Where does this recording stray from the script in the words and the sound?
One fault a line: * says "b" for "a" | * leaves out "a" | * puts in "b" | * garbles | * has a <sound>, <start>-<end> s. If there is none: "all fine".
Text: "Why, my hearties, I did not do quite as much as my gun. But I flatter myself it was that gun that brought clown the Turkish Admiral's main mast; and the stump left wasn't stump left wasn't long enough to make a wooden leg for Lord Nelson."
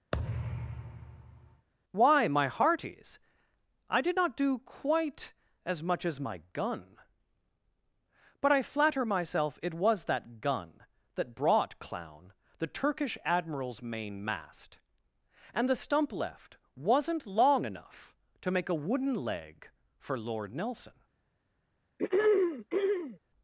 * has a thud, 0.1-1.7 s
* leaves out "stump left wasn't"
* has a throat clearing, 22.0-23.2 s